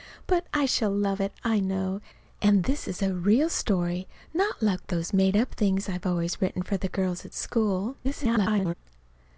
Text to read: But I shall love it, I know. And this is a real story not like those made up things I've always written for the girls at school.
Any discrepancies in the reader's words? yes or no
yes